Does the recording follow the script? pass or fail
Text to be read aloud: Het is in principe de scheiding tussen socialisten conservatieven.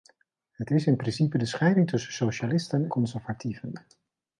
pass